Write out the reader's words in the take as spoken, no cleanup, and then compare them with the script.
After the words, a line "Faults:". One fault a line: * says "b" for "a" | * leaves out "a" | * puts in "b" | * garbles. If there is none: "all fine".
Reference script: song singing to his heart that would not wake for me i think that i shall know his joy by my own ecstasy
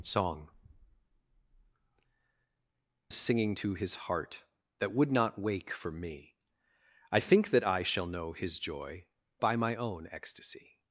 song singing to his heart that would not wake for me i think that i shall know his joy by my own ecstasy
Faults:
all fine